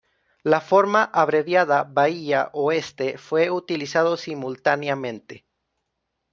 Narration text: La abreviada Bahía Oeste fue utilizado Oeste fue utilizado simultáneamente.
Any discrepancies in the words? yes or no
yes